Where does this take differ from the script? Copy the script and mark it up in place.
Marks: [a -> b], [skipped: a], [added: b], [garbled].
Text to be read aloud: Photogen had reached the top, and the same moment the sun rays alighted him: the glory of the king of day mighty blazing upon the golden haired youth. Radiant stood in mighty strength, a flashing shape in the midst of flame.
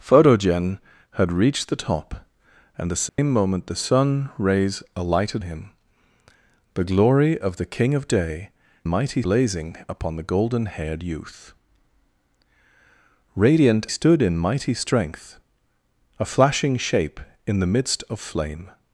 Photogen had reached the top, and the same moment the sun rays alighted him: the glory of the king of day mighty blazing upon the golden haired youth. Radiant stood in mighty strength, a flashing shape in the midst of flame.